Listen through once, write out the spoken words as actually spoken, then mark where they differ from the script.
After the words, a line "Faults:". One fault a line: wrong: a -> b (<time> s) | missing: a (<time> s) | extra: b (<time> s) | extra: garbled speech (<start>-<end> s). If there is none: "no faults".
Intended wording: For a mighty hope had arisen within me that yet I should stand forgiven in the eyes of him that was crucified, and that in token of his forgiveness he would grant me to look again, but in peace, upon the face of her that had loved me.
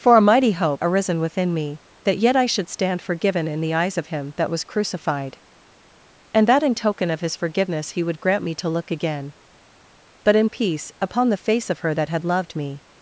For a mighty hope arisen within me that yet I should stand forgiven in the eyes of him that was crucified, and that in token of his forgiveness he would grant me to look again, but in peace, upon the face of her that had loved me.
Faults:
missing: had (0.8 s)